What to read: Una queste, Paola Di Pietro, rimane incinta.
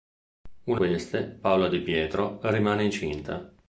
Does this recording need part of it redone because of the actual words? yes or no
no